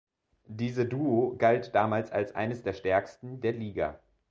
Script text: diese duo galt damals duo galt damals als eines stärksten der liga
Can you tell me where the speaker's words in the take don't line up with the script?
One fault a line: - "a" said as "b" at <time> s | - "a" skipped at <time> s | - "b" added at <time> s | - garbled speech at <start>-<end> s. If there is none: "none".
- "duo galt damals" skipped at 2.1 s
- "der" added at 2.6 s